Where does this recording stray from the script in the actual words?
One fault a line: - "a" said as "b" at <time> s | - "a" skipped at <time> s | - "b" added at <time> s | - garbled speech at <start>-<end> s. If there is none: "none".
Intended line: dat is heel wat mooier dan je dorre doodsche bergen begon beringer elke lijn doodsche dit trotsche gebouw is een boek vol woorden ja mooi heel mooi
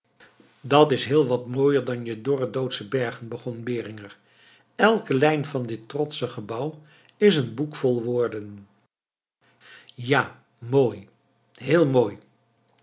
- "doodsche" said as "van" at 5.4 s